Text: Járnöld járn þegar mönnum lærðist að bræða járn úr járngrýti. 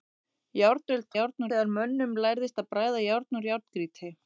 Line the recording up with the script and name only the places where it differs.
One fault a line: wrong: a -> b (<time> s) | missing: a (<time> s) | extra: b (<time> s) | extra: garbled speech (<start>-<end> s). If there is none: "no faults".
no faults